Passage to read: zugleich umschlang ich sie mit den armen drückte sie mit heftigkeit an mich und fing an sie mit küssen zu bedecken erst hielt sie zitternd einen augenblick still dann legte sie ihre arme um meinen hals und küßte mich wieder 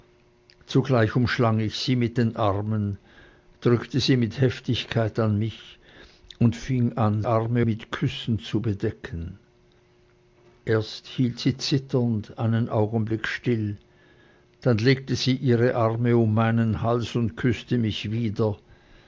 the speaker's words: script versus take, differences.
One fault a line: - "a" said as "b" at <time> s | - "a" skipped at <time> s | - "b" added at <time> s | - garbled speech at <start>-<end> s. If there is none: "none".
- "sie" said as "arme" at 7.2 s